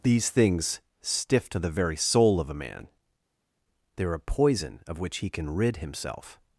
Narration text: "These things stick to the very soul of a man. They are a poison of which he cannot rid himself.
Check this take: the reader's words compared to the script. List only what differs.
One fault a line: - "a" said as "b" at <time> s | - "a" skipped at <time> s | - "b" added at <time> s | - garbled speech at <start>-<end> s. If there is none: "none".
- "stick" said as "stiff" at 1.0 s
- "cannot" said as "can" at 5.3 s